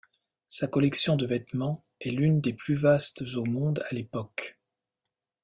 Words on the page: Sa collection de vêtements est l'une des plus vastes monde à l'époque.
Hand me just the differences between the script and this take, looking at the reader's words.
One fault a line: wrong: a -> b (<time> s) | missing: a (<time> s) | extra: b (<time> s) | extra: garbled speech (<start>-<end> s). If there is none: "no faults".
extra: au (3.3 s)